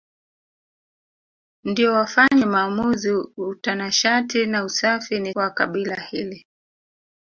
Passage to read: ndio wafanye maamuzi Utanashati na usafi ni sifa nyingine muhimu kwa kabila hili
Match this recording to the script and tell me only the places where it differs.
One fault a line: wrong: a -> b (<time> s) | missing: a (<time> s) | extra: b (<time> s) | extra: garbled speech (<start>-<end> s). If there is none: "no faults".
missing: sifa nyingine muhimu (5.3 s)